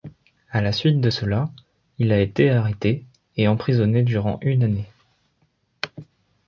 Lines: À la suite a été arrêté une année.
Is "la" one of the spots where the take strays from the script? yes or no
no